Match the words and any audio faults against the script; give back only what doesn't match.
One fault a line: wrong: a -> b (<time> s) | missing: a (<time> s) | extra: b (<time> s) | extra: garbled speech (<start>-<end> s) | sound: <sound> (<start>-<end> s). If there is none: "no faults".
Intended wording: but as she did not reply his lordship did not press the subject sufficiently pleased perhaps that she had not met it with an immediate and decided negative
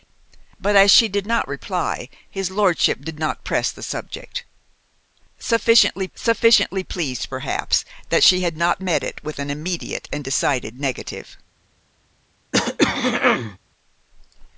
extra: sufficiently (6.1 s)
sound: throat clearing (12.5-13.6 s)